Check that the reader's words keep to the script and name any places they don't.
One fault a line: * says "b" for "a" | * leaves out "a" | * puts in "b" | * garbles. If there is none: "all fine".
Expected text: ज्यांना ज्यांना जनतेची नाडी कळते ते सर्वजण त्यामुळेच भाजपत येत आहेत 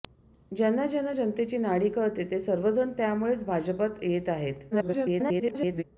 * garbles